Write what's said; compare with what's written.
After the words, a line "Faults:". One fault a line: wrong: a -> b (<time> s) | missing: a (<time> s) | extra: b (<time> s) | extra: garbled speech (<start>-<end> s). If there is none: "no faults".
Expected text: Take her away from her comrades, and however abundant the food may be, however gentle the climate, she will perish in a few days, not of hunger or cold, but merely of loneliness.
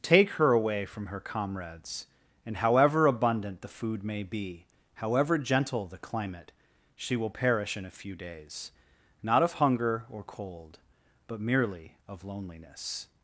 Take her away from her comrades, and however abundant the food may be, however gentle the climate, she will perish in a few days, not of hunger or cold, but merely of loneliness.
Faults:
no faults